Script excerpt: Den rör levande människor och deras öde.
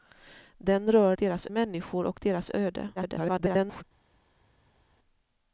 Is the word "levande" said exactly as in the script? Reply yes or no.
no